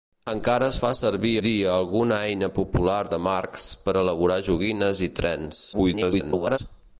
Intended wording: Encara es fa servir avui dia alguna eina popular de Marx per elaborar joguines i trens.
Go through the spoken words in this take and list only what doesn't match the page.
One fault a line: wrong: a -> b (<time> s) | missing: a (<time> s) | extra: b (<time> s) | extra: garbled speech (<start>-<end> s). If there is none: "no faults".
missing: avui (1.3 s)
extra: garbled speech (5.7-6.6 s)